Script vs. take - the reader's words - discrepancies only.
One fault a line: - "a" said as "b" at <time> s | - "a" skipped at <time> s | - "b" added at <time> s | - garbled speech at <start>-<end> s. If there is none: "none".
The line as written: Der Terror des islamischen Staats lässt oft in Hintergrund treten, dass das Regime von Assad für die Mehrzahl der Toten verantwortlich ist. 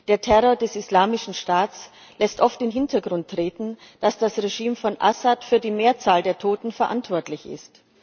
none